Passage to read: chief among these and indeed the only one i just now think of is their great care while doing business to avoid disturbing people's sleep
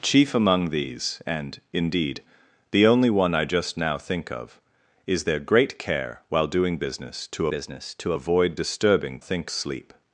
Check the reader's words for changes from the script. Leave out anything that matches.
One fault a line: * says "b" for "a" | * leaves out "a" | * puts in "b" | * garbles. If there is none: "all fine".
* puts in "business to"
* says "think" for "people's"